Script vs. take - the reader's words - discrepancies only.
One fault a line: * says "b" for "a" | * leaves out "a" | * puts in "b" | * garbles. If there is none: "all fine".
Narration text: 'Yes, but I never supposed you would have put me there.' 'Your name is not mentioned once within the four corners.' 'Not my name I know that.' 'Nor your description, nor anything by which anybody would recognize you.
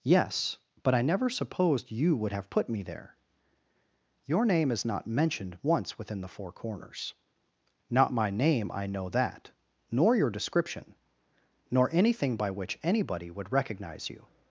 all fine